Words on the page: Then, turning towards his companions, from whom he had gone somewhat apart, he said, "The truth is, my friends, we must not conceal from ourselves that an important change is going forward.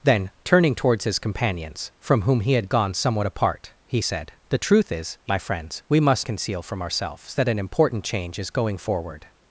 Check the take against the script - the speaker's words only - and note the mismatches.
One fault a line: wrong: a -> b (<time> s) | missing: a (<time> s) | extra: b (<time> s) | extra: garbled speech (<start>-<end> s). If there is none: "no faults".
missing: not (6.3 s)